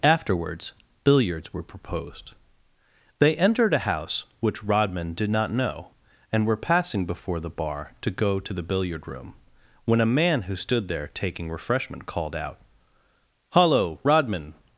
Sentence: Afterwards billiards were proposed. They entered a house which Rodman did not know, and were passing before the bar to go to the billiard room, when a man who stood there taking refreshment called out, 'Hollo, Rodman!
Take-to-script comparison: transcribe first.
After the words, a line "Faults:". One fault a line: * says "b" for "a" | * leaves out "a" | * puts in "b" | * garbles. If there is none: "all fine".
Afterwards billiards were proposed. They entered a house which Rodman did not know, and were passing before the bar to go to the billiard room, when a man who stood there taking refreshment called out, 'Hollo, Rodman!
Faults:
all fine